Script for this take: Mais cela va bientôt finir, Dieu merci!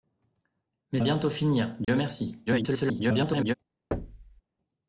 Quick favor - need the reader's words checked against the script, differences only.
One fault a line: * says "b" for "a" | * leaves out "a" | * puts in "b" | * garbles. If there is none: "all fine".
* leaves out "cela va"
* garbles